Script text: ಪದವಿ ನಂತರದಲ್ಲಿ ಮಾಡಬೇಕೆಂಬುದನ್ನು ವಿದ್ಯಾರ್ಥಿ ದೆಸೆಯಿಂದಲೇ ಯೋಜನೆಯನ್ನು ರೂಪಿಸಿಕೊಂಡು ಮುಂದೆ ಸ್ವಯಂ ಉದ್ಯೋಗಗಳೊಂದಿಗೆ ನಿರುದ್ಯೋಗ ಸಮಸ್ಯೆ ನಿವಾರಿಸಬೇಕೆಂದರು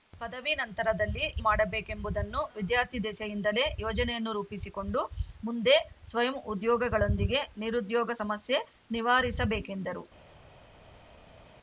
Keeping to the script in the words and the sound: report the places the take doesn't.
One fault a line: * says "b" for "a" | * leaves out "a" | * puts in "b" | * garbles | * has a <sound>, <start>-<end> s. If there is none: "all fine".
all fine